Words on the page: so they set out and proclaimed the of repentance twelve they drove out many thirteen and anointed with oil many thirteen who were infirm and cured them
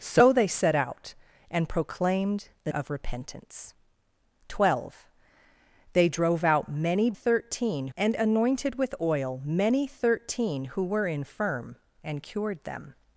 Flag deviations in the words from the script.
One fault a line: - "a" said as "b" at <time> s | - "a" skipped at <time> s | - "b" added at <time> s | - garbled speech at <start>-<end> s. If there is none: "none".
none